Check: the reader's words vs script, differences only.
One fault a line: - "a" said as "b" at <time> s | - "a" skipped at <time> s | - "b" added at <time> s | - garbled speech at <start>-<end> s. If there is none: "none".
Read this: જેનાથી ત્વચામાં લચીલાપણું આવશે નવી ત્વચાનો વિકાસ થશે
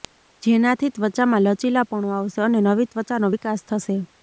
- "અને" added at 2.4 s